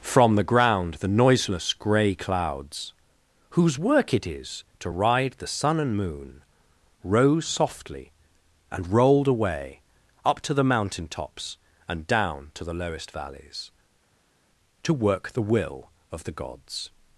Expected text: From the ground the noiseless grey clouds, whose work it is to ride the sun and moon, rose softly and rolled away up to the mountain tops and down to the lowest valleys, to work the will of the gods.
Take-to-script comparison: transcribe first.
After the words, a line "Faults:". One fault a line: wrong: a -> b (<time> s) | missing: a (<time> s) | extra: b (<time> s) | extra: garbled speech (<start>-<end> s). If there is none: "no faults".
From the ground the noiseless grey clouds, whose work it is to ride the sun and moon, rose softly and rolled away up to the mountain tops and down to the lowest valleys, to work the will of the gods.
Faults:
no faults